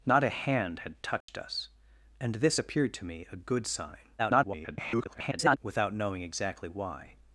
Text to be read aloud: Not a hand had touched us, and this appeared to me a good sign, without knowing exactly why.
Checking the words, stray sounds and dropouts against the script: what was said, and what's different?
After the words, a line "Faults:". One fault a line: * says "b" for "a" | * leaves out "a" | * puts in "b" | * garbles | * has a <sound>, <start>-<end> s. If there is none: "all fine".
Not a hand had touched us, and this appeared to me a good sign, [garbled] without knowing exactly why.
Faults:
* has a dropout, 1.2-1.3 s
* garbles